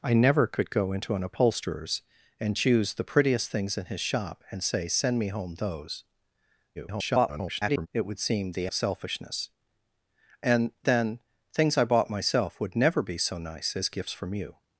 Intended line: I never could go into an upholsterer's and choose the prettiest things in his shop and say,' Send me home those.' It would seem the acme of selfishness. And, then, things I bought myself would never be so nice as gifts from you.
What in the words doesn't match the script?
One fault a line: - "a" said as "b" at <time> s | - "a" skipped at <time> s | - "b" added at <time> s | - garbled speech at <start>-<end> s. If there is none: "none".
- garbled speech at 6.8-7.9 s
- "acme" skipped at 8.7 s